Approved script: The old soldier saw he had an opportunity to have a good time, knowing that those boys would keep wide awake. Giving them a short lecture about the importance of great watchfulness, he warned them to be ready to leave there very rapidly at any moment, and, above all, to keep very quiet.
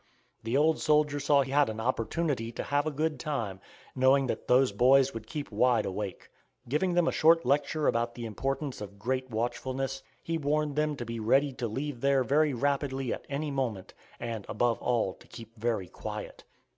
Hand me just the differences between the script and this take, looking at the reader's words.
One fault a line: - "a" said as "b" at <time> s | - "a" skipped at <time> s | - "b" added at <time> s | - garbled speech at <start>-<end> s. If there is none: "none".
none